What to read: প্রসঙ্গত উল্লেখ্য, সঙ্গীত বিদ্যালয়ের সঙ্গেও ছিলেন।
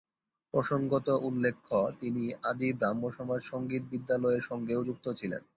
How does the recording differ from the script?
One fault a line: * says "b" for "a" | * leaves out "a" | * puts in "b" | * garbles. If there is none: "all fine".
* puts in "তিনি আদি ব্রাহ্মসমাজ"
* puts in "যুক্ত"